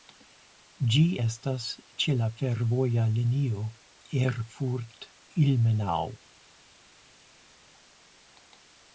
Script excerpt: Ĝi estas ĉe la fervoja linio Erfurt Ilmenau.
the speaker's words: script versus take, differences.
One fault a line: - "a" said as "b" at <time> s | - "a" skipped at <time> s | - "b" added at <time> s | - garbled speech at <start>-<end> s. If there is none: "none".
none